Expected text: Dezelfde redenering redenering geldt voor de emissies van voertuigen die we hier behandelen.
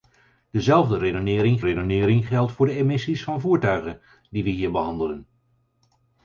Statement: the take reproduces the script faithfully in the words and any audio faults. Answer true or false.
true